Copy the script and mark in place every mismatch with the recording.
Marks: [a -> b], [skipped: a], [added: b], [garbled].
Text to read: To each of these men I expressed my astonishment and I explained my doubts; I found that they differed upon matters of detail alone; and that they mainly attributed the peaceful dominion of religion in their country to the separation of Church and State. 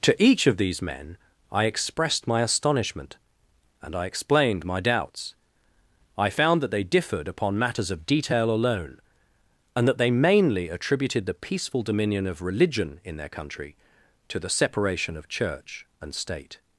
To each of these men I expressed my astonishment and I explained my doubts; I found that they differed upon matters of detail alone; and that they mainly attributed the peaceful dominion of religion in their country to the separation of Church and State.